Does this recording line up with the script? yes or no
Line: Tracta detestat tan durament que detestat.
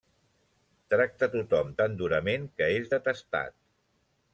no